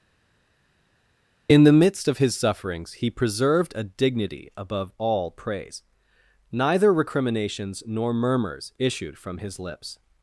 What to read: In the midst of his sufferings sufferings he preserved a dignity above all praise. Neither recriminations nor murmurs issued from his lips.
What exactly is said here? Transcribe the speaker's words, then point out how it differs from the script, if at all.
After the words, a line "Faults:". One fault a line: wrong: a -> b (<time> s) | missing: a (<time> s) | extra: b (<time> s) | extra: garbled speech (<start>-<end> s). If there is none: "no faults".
In the midst of his sufferings he preserved a dignity above all praise. Neither recriminations nor murmurs issued from his lips.
Faults:
missing: sufferings (2.9 s)